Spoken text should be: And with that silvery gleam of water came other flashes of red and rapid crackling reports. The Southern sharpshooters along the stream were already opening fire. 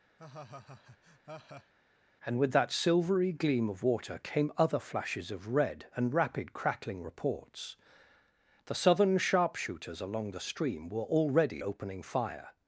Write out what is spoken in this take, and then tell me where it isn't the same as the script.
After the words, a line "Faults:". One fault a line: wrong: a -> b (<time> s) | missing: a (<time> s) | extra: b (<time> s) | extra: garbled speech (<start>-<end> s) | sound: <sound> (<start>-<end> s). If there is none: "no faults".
And with that silvery gleam of water came other flashes of red and rapid crackling reports. The Southern sharpshooters along the stream were already opening fire.
Faults:
sound: laugh (0.2-1.7 s)